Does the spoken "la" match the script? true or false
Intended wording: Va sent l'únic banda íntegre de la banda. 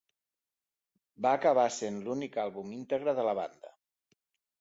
true